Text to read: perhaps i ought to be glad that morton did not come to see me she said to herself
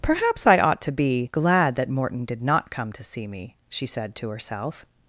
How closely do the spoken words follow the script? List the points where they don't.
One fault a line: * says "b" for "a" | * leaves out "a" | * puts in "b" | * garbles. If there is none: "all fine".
all fine